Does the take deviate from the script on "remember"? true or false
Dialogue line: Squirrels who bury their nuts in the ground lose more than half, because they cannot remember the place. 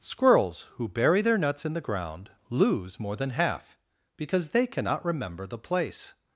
false